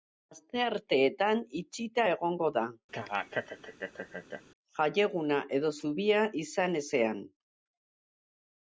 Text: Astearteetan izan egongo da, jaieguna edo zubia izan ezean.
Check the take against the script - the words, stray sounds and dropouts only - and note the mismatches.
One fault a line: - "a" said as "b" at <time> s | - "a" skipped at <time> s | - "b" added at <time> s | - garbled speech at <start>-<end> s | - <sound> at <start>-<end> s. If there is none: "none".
- "izan" said as "itxita" at 1.6 s
- laugh at 2.9-4.4 s